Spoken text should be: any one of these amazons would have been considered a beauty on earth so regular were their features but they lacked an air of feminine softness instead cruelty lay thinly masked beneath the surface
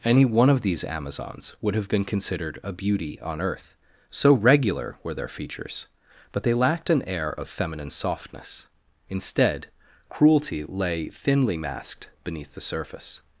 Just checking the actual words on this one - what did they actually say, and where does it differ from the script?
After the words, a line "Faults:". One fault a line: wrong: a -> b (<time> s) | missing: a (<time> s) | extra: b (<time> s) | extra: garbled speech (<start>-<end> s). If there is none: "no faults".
any one of these amazons would have been considered a beauty on earth so regular were their features but they lacked an air of feminine softness instead cruelty lay thinly masked beneath the surface
Faults:
no faults